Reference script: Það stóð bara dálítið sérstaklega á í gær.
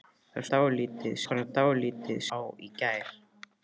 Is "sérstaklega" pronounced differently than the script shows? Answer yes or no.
yes